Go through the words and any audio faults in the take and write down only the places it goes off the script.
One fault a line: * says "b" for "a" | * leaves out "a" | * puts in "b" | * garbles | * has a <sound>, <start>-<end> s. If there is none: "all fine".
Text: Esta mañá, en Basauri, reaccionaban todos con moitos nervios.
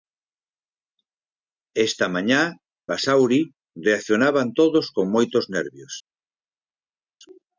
* leaves out "en"